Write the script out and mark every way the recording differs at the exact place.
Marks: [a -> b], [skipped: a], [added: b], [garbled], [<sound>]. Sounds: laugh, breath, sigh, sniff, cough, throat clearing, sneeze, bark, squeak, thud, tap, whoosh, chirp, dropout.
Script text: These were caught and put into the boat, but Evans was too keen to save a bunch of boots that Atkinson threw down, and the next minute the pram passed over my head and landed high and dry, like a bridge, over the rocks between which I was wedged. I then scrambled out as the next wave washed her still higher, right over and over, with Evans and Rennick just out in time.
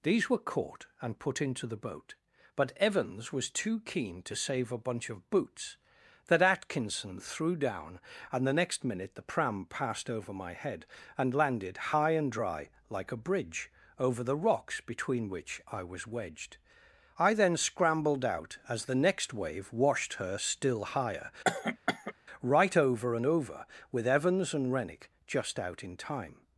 These were caught and put into the boat, but Evans was too keen to save a bunch of boots that Atkinson threw down, and the next minute the pram passed over my head and landed high and dry, like a bridge, over the rocks between which I was wedged. I then scrambled out as the next wave washed her still higher, [cough] right over and over, with Evans and Rennick just out in time.